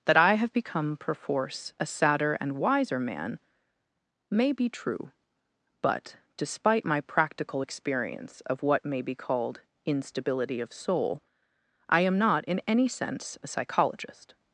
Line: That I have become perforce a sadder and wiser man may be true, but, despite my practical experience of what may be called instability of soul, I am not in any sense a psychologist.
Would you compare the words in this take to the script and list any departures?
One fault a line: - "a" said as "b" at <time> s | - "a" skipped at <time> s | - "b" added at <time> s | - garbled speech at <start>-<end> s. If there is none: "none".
none